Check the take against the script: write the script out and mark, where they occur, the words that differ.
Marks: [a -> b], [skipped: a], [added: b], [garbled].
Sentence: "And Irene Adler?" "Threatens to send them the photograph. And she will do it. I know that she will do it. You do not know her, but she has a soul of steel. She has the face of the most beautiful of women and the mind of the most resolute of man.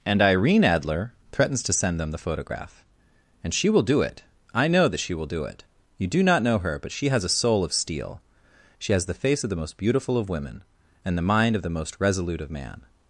"And Irene Adler?" "Threatens to send them the photograph. And she will do it. I know that she will do it. You do not know her, but she has a soul of steel. She has the face of the most beautiful of women and the mind of the most resolute of man.